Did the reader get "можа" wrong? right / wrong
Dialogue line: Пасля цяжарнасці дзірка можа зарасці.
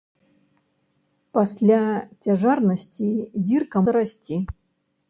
wrong